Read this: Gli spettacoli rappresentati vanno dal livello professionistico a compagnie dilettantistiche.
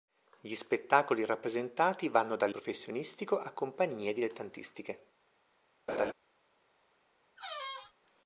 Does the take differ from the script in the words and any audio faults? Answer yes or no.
yes